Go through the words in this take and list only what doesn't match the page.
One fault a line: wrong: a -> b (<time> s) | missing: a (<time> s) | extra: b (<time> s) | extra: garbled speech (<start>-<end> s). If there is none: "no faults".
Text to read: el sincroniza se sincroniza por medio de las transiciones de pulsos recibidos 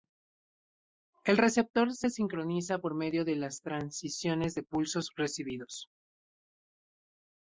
wrong: sincroniza -> receptor (1.4 s)